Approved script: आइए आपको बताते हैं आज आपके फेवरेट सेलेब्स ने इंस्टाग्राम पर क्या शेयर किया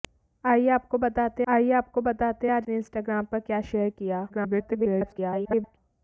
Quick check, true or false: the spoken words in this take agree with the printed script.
false